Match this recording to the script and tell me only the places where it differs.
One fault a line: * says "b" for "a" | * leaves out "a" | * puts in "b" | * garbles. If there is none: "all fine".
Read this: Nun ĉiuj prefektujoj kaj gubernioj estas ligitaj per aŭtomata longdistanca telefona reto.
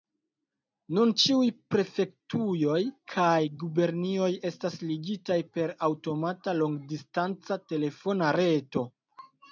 all fine